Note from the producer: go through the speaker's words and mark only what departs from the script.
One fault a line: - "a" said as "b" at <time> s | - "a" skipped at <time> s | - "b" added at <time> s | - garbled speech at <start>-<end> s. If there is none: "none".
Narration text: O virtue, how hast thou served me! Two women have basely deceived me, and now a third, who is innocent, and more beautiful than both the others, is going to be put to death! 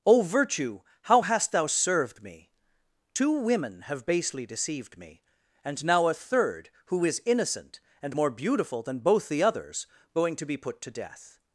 - "is" skipped at 9.9 s